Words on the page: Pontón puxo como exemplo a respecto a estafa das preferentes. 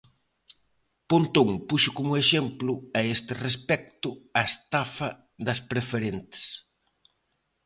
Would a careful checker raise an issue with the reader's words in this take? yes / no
yes